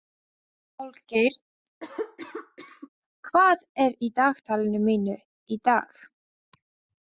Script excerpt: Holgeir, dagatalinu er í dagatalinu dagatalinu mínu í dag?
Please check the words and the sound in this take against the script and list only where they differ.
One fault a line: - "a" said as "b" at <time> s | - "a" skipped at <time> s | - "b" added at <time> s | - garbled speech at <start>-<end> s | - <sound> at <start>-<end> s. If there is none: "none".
- cough at 1.8-2.9 s
- "dagatalinu" said as "hvað" at 3.3 s
- "dagatalinu" skipped at 4.8 s